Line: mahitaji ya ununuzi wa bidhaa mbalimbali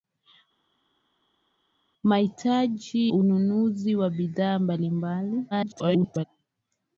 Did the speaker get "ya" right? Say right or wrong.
wrong